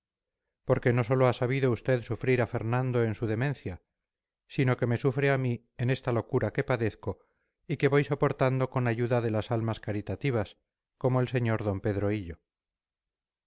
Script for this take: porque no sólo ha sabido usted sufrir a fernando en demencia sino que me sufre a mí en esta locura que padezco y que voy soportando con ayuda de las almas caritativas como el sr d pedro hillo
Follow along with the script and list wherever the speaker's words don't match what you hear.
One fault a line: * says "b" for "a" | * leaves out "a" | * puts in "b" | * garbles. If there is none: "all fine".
* puts in "su"